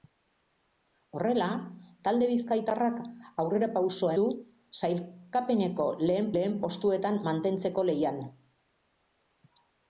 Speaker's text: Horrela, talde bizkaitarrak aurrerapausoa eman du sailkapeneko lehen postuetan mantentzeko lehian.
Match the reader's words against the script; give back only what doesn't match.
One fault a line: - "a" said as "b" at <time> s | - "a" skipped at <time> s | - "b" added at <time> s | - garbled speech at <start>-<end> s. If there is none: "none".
- "eman" skipped at 4.2 s
- "lehen" added at 6.4 s